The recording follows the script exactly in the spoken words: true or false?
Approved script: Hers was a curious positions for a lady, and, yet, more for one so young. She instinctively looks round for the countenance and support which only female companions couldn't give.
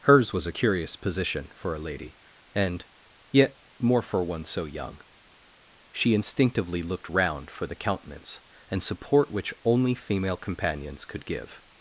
false